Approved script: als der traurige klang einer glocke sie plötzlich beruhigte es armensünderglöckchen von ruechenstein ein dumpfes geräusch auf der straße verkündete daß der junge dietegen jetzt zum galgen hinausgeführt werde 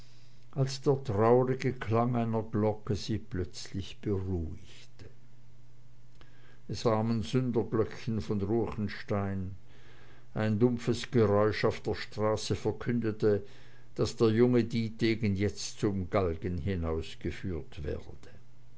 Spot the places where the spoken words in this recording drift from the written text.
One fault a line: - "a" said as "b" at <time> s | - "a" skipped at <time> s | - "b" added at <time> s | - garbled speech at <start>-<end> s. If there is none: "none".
none